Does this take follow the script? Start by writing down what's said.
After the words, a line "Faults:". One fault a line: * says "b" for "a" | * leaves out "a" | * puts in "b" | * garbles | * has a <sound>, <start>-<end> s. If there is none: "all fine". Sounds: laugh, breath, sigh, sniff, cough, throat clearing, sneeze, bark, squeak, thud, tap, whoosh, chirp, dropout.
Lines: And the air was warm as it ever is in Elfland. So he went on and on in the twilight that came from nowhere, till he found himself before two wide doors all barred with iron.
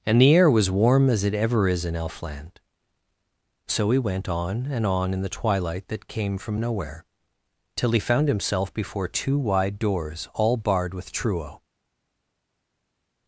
And the air was warm as it ever is in Elfland. So he went on and on in the twilight that came from nowhere, till he found himself before two wide doors all barred with truo.
Faults:
* says "truo" for "iron"